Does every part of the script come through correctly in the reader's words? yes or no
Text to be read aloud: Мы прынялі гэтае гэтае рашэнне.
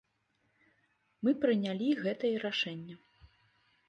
no